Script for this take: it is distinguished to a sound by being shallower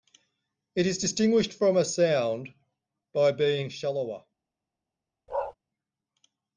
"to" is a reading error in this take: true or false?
true